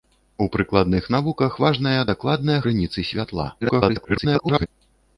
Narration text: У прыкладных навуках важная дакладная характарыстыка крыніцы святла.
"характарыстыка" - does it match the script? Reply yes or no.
no